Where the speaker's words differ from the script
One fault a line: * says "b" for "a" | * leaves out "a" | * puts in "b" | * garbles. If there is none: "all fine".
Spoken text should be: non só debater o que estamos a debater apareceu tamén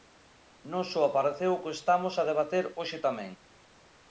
* says "apareceu" for "debater"
* says "hoxe" for "apareceu"